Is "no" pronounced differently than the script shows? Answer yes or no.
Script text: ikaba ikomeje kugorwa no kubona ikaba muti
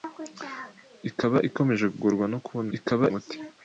no